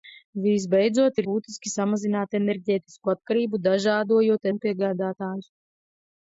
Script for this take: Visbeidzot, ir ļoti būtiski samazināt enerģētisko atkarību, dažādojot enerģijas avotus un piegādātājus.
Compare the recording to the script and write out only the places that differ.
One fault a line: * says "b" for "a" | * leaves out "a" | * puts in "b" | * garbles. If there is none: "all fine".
* leaves out "ļoti"
* leaves out "enerģijas avotus"